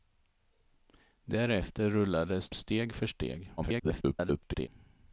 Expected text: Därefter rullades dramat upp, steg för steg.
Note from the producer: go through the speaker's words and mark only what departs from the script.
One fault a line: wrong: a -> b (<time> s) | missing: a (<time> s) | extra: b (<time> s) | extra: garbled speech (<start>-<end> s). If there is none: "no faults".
missing: dramat upp (2.5 s)
extra: garbled speech (3.6-4.7 s)